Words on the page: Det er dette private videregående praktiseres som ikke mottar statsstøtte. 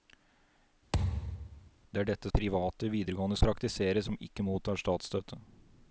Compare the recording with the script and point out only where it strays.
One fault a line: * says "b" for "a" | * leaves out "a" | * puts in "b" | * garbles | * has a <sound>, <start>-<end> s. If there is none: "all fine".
* has a thud, 0.9-1.7 s